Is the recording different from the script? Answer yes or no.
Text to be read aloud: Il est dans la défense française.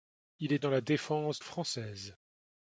no